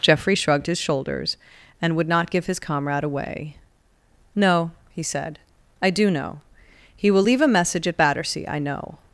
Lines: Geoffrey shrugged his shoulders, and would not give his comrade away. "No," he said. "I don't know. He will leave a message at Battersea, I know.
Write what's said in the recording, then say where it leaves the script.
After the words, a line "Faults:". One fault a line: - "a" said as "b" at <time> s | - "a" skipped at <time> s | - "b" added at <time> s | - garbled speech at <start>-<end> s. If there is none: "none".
Geoffrey shrugged his shoulders, and would not give his comrade away. "No," he said. "I do know. He will leave a message at Battersea, I know.
Faults:
- "don't" said as "do" at 5.9 s